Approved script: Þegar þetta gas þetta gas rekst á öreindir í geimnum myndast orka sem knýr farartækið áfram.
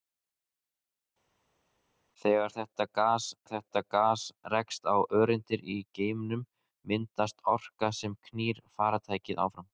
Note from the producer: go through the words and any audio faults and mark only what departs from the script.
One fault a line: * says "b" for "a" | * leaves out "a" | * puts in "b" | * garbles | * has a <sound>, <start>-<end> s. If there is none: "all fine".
all fine